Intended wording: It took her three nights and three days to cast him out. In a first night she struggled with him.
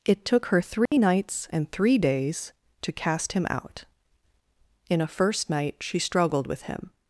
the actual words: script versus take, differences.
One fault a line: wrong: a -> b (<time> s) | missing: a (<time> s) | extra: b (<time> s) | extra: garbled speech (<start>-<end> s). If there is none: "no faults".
no faults